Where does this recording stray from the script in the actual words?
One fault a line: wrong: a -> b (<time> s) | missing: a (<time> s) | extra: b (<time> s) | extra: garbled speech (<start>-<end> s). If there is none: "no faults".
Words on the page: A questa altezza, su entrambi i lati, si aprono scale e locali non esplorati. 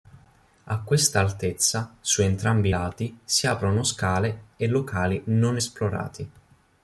no faults